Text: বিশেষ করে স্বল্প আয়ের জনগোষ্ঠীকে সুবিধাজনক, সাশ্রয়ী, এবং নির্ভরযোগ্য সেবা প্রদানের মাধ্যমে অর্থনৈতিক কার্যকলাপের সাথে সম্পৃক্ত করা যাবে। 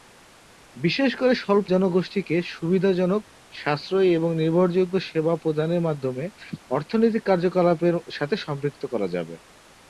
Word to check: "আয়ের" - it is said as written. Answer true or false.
false